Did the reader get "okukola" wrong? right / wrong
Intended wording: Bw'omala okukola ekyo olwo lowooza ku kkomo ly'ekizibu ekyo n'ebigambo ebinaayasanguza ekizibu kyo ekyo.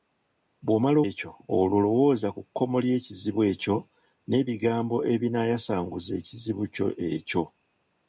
wrong